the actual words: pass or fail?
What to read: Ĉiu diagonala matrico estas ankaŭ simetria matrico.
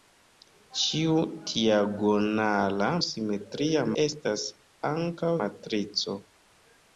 fail